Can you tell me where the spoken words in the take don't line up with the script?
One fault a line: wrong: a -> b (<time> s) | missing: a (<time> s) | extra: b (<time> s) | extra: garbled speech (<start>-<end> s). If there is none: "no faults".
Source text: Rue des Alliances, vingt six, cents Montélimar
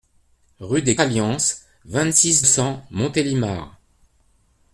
no faults